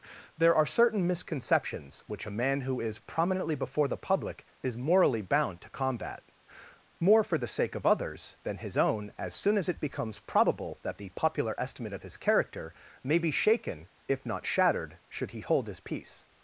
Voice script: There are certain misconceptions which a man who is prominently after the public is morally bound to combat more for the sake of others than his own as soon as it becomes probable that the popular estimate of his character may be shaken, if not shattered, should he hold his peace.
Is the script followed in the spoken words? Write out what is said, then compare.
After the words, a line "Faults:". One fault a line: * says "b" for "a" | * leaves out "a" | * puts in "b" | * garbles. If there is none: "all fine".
There are certain misconceptions which a man who is prominently before the public is morally bound to combat more for the sake of others than his own as soon as it becomes probable that the popular estimate of his character may be shaken, if not shattered, should he hold his peace.
Faults:
* says "before" for "after"